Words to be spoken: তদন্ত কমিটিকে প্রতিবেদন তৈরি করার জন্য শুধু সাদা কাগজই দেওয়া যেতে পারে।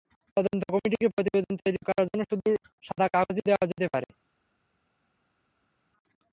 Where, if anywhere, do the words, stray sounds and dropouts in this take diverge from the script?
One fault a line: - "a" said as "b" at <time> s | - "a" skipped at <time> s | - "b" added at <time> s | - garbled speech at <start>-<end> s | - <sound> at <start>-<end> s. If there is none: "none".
none